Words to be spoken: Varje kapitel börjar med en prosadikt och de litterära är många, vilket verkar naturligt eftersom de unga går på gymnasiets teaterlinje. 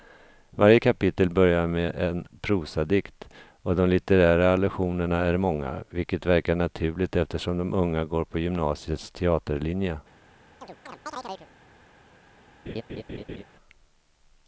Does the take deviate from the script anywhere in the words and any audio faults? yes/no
yes